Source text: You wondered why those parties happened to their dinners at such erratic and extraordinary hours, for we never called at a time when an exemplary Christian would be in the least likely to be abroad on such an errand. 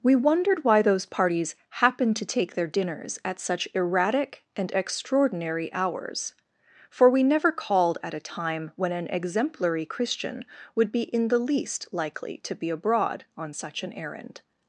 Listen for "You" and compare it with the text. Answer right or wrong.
wrong